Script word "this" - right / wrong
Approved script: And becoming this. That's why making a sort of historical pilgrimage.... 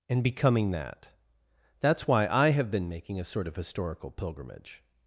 wrong